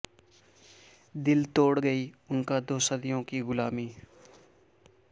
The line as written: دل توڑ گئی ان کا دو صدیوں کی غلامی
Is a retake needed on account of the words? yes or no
no